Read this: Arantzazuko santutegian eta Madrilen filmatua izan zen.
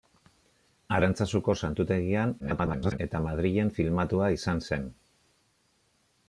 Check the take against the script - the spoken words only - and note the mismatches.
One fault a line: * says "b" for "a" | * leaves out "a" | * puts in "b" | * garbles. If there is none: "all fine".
* garbles